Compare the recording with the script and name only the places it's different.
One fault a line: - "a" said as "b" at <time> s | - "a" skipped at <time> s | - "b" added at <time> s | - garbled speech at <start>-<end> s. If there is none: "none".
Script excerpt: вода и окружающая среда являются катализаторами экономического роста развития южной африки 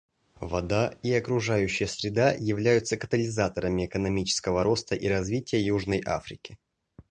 - "и" added at 4.9 s